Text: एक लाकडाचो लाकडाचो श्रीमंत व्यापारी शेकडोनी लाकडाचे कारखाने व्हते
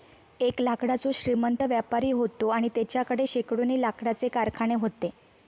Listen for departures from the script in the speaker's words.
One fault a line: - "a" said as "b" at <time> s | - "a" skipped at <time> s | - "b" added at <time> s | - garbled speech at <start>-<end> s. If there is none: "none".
- "लाकडाचो" skipped at 1.1 s
- "व्हतो आणि तेच्याकडे" added at 2.1 s